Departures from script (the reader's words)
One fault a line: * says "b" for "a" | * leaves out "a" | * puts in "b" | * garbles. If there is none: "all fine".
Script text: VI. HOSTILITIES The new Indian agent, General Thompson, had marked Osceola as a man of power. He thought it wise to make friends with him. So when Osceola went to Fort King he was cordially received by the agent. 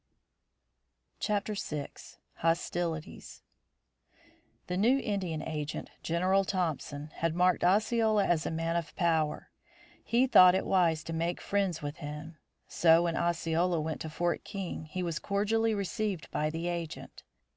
all fine